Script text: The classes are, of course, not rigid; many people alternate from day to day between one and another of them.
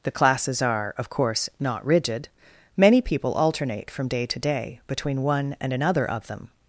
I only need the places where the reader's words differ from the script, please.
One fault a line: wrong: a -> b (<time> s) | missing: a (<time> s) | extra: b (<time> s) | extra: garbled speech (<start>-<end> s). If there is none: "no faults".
no faults